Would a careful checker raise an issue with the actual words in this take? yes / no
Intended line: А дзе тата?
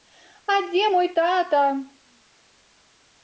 yes